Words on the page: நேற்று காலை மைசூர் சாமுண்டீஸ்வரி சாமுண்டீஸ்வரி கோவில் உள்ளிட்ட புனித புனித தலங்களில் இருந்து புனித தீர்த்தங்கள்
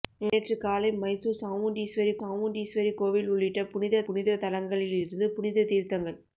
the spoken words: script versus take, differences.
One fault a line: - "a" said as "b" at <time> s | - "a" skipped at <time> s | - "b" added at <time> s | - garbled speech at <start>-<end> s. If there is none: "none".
none